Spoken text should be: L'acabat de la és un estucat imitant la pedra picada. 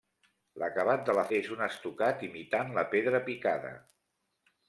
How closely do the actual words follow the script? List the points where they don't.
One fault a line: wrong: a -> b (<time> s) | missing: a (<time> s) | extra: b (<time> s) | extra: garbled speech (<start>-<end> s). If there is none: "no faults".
no faults